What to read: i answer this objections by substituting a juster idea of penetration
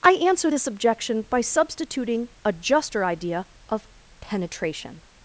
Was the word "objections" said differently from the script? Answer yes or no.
yes